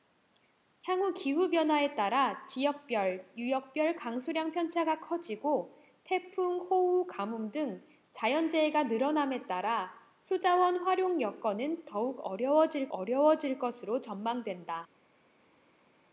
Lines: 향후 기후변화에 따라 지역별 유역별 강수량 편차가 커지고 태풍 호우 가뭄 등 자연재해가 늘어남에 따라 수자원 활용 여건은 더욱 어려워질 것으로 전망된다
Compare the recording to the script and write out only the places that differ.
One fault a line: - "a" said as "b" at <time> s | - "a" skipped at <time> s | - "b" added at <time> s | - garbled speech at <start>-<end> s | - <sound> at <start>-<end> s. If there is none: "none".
- "어려워질" added at 12.9 s